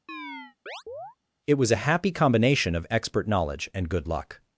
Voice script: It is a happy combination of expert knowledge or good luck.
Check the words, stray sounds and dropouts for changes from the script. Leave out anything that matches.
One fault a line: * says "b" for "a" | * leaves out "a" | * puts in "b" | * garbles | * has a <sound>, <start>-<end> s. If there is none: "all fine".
* has a chirp, 0.1-1.2 s
* says "was" for "is"
* says "and" for "or"